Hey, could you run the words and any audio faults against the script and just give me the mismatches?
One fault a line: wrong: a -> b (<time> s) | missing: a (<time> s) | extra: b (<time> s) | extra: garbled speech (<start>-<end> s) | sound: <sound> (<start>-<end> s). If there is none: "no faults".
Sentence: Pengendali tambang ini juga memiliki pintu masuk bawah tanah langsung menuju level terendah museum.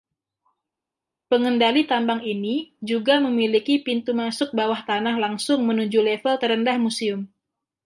no faults